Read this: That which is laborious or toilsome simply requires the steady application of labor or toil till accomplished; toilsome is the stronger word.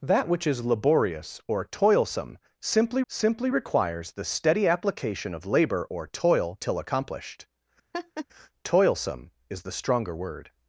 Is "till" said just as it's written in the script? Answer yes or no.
yes